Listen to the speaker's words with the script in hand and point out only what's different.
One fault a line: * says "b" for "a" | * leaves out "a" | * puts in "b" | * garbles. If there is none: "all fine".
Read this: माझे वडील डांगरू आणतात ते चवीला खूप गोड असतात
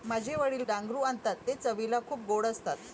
all fine